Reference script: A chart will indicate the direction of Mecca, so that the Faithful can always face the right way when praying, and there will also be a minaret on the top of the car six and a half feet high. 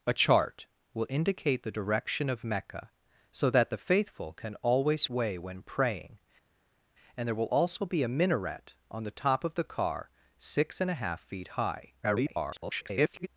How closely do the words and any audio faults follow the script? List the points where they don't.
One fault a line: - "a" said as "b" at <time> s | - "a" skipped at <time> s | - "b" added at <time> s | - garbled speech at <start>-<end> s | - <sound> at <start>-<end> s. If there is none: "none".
- "face the right" skipped at 5.0 s
- garbled speech at 12.0-13.3 s